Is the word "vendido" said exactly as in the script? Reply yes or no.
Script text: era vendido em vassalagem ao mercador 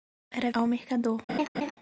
no